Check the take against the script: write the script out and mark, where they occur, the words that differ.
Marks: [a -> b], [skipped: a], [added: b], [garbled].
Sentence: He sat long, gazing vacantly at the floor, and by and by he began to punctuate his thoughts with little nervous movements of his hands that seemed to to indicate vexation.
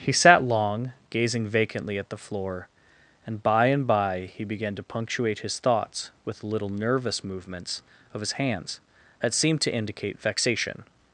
He sat long, gazing vacantly at the floor, and by and by he began to punctuate his thoughts with little nervous movements of his hands that seemed to [skipped: to] indicate vexation.